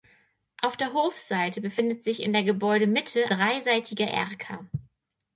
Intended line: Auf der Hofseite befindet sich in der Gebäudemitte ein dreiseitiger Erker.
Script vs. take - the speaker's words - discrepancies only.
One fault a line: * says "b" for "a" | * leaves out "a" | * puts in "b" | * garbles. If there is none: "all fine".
* leaves out "ein"